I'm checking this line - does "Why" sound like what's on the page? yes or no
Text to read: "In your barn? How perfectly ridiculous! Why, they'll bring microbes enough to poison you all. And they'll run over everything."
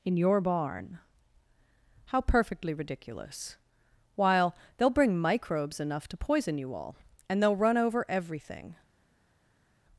no